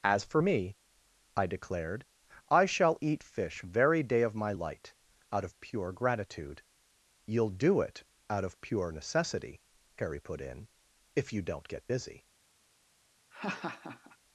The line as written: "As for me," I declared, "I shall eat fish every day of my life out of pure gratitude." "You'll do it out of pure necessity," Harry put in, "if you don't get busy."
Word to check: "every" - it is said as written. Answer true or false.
false